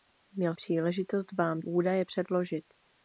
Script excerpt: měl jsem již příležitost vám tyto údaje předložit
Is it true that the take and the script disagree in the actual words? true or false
true